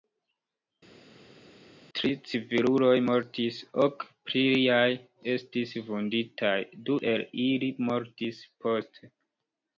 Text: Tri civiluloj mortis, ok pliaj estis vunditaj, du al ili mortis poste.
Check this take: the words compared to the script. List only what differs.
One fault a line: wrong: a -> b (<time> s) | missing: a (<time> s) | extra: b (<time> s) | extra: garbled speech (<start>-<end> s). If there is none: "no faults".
wrong: al -> el (7.1 s)